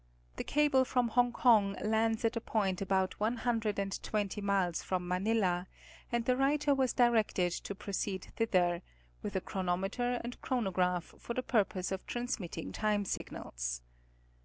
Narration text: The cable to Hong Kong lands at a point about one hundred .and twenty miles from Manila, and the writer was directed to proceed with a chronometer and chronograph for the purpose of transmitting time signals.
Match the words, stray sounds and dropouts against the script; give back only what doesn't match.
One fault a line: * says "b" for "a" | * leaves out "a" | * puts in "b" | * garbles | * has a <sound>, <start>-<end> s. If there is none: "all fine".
* says "from" for "to"
* puts in "thither"
* has a dropout, 13.2-13.2 s